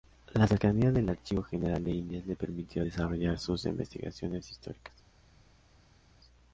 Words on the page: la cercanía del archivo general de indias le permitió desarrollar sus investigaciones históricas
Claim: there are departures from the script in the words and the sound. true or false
false